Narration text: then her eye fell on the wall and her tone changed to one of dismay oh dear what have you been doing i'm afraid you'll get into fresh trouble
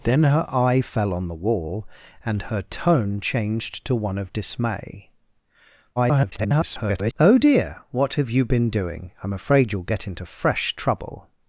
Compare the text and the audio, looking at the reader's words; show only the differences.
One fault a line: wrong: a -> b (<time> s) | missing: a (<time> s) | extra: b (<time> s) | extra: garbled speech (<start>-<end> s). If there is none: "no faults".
extra: garbled speech (6.0-7.1 s)